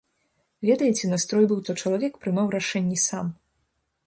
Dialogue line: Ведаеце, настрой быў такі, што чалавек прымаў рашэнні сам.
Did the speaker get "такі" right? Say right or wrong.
wrong